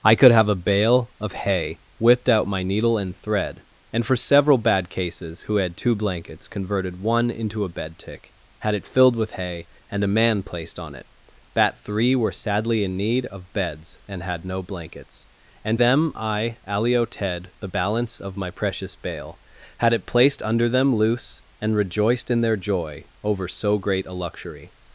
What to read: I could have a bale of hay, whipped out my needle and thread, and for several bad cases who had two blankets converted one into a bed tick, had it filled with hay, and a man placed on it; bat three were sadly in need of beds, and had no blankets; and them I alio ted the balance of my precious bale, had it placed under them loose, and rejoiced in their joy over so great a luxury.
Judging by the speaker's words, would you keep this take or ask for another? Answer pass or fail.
pass